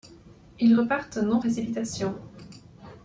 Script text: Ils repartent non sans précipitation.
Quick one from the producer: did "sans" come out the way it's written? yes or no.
no